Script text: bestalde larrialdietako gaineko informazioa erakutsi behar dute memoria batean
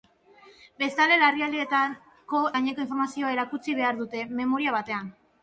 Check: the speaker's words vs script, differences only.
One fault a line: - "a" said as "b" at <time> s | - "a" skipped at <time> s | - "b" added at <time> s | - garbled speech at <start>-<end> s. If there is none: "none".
none